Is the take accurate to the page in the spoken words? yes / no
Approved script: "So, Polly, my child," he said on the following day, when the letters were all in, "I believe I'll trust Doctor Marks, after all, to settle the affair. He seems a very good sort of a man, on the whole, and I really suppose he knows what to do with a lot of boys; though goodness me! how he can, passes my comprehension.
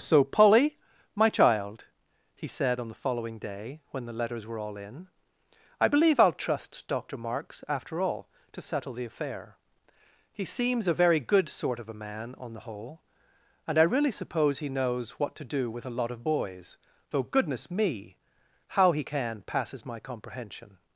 yes